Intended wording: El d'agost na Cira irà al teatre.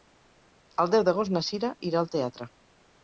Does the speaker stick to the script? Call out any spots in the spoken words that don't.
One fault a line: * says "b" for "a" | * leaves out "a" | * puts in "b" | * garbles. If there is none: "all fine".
* puts in "deu"